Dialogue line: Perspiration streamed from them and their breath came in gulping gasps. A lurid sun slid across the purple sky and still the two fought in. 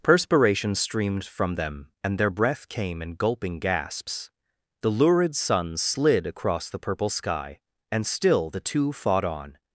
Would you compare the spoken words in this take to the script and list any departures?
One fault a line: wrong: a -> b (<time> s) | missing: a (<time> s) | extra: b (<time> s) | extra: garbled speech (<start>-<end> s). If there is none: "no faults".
wrong: A -> The (4.8 s)
wrong: in -> on (9.2 s)